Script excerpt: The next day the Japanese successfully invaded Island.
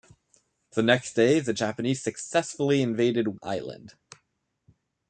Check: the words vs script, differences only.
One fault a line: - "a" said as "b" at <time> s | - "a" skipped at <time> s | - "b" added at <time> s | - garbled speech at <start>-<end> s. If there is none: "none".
none